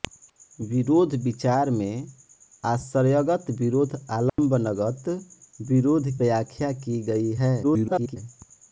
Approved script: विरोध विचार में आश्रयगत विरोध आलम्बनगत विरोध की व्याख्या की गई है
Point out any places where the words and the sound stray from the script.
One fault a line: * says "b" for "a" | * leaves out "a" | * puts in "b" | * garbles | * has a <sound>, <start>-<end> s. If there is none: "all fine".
* has a dropout, 4.3-4.4 s
* leaves out "की"
* garbles